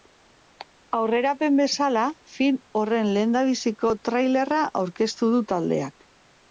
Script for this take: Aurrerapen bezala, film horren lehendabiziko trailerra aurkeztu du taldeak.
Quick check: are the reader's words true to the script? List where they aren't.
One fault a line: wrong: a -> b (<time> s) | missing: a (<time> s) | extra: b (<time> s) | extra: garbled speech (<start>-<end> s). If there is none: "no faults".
no faults